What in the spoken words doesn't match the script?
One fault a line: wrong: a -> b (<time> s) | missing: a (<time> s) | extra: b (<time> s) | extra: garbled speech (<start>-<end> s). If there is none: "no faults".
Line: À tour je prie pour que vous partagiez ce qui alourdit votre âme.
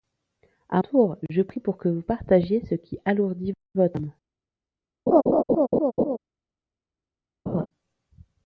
no faults